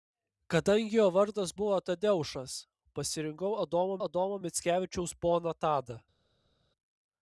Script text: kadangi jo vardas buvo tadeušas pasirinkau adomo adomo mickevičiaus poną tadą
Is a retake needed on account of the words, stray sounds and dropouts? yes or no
no